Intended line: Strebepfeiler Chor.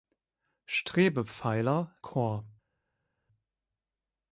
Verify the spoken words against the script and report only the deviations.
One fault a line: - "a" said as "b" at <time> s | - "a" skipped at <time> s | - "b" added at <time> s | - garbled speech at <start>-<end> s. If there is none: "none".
none